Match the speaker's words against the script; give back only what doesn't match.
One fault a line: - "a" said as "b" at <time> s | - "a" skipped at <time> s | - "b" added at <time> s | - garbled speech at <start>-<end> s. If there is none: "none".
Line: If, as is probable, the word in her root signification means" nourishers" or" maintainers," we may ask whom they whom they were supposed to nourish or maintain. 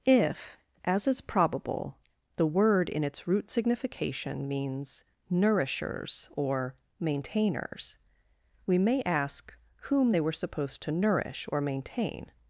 - "her" said as "its" at 3.0 s
- "whom they" skipped at 10.2 s